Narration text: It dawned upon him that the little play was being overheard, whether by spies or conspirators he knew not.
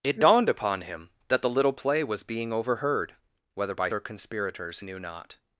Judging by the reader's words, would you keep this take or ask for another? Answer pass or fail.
fail